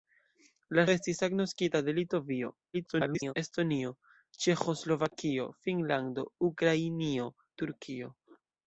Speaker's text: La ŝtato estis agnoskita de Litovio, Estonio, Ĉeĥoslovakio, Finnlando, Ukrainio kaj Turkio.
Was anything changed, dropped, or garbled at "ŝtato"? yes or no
yes